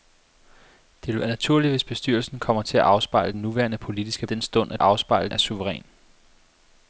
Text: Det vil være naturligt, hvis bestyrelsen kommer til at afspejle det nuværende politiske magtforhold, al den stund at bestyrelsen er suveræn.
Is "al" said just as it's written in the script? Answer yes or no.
no